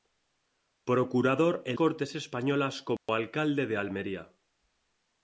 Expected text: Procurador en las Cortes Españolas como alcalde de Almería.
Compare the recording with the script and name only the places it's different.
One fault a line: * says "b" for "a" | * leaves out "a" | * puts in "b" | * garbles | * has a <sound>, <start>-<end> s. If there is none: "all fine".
* leaves out "las"
* has a dropout, 3.0-3.1 s